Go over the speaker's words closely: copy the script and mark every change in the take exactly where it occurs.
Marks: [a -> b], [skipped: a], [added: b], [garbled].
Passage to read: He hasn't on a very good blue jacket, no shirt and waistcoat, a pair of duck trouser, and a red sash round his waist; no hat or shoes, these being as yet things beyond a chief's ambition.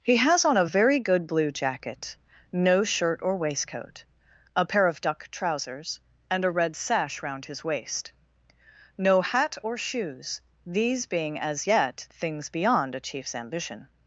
He [hasn't -> has] on a very good blue jacket, no shirt [and -> or] waistcoat, a pair of duck [trouser, -> trousers] and a red sash round his waist; no hat or shoes, these being as yet things beyond a chief's ambition.